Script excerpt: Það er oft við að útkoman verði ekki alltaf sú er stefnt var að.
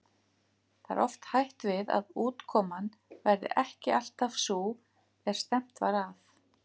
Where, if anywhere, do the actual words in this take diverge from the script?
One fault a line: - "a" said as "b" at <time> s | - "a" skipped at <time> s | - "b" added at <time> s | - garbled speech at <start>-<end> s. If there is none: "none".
- "hætt" added at 1.3 s